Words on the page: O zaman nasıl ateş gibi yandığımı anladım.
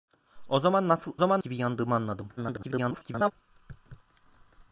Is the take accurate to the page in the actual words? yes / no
no